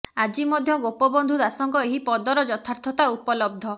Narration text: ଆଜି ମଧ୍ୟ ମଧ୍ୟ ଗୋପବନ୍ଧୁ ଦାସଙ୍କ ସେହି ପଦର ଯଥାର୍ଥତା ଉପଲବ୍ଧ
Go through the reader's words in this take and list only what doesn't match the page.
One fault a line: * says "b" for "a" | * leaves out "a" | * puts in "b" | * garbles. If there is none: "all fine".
* leaves out "ମଧ୍ୟ"
* says "ଏହି" for "ସେହି"